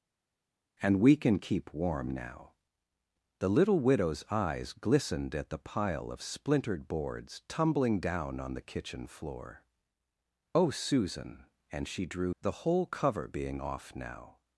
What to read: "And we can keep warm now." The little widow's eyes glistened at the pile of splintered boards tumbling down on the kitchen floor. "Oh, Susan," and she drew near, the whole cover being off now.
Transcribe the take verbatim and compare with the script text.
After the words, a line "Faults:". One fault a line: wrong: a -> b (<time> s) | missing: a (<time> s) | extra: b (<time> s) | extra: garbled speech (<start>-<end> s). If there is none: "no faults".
"And we can keep warm now." The little widow's eyes glistened at the pile of splintered boards tumbling down on the kitchen floor. "Oh, Susan," and she drew the whole cover being off now.
Faults:
missing: near (12.3 s)